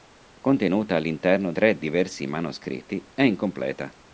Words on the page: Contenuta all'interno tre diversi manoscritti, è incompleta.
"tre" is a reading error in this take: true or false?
false